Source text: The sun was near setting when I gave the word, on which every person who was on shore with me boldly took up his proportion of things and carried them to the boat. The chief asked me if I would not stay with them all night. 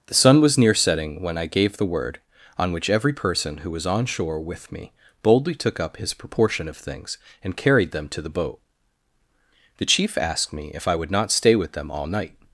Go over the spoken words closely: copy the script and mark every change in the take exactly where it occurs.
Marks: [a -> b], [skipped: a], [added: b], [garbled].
The sun was near setting when I gave the word, on which every person who was on shore with me boldly took up his proportion of things and carried them to the boat. The chief asked me if I would not stay with them all night.